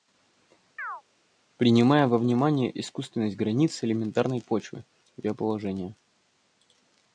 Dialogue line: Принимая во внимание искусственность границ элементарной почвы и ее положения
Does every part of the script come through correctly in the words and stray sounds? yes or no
no